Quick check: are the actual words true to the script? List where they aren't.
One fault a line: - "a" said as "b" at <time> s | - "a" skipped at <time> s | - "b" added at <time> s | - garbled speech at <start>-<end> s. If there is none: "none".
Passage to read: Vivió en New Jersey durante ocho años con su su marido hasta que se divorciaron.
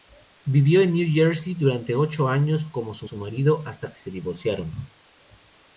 none